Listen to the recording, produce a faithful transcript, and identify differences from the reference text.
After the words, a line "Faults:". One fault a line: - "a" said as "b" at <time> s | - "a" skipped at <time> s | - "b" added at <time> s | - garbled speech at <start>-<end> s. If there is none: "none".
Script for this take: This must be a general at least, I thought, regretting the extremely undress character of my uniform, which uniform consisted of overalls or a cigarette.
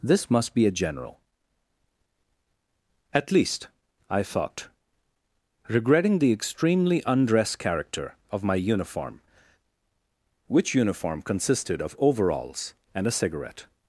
This must be a general at least, I thought, regretting the extremely undress character of my uniform, which uniform consisted of overalls and a cigarette.
Faults:
- "or" said as "and" at 12.9 s